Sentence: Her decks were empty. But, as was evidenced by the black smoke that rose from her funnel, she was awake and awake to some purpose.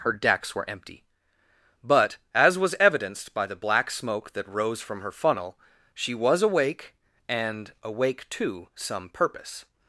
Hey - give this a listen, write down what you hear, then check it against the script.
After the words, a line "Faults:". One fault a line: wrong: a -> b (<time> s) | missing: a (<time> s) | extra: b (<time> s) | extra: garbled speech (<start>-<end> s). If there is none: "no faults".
Her decks were empty. But, as was evidenced by the black smoke that rose from her funnel, she was awake and awake to some purpose.
Faults:
no faults